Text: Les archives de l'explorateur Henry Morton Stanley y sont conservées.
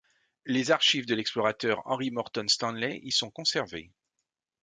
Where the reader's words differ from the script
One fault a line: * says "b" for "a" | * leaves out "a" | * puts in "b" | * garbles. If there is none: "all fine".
all fine